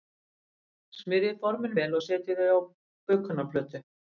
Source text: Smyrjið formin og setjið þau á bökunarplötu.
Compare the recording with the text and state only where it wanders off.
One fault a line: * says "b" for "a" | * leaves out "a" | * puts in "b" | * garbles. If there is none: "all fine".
* puts in "vel"